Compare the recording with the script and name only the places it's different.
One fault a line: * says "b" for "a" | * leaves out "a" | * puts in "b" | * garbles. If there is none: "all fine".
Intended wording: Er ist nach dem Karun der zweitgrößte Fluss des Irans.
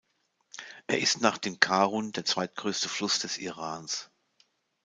all fine